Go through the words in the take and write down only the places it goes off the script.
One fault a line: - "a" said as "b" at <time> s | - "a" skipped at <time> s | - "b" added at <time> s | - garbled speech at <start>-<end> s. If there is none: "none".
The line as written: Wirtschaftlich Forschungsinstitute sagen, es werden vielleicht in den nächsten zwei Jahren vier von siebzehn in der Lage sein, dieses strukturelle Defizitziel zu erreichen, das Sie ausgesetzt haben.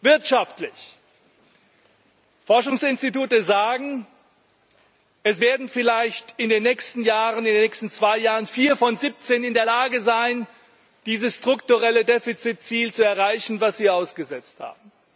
none